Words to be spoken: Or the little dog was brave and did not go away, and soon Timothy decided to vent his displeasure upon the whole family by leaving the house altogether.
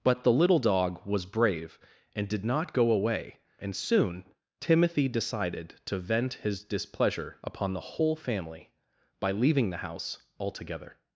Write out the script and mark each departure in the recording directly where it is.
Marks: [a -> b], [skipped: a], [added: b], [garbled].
[Or -> But] the little dog was brave and did not go away, and soon Timothy decided to vent his displeasure upon the whole family by leaving the house altogether.